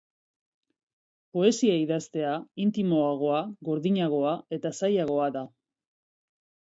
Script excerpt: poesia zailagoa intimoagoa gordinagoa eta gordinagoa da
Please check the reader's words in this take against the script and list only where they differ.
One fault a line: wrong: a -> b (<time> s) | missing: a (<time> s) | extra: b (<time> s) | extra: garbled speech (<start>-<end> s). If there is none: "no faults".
wrong: zailagoa -> idaztea (1.8 s)
wrong: gordinagoa -> zailagoa (4.8 s)